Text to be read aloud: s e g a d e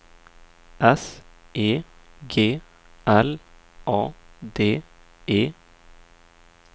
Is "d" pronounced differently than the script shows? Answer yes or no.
no